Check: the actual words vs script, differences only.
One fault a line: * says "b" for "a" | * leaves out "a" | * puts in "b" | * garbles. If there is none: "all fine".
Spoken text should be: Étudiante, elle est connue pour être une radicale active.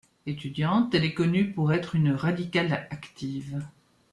all fine